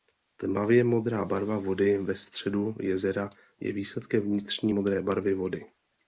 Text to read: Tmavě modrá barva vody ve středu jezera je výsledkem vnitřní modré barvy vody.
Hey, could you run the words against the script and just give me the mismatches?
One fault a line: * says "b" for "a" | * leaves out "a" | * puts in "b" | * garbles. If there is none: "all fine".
all fine